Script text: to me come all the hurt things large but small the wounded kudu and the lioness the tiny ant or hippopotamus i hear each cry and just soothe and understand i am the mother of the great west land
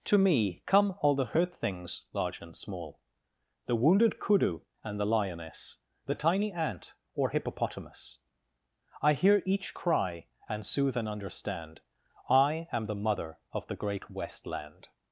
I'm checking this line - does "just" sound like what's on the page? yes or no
no